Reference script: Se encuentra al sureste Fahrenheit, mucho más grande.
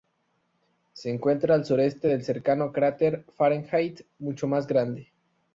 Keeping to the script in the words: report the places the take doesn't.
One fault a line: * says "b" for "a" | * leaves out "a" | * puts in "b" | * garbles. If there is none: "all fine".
* puts in "del cercano cráter"